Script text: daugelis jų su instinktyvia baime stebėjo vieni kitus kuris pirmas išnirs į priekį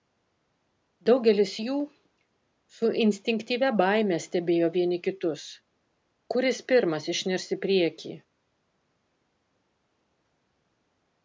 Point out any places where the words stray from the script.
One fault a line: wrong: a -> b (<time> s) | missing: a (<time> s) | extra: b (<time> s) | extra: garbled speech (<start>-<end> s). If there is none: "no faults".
no faults